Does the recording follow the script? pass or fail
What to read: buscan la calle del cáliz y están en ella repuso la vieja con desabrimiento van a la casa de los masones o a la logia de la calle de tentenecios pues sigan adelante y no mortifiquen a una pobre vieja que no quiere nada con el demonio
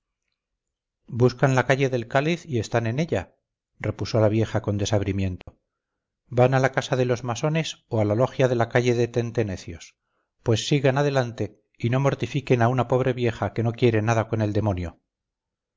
pass